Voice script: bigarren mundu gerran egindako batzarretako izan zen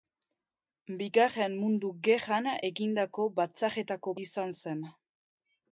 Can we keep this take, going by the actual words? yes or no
yes